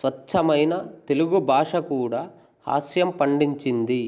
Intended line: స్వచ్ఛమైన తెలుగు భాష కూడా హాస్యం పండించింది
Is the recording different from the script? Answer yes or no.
no